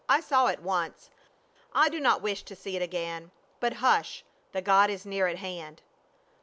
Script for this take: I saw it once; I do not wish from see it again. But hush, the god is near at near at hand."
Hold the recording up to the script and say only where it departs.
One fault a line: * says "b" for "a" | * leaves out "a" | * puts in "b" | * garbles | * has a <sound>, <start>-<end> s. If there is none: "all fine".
* says "to" for "from"
* leaves out "near at"